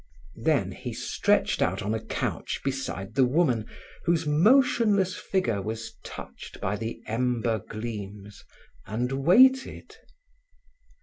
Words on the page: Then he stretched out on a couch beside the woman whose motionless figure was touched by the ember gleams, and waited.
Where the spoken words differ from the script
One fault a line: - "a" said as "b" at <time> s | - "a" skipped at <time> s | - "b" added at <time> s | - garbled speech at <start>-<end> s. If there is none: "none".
none